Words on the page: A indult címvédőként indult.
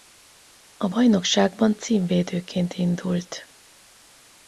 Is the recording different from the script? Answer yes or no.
yes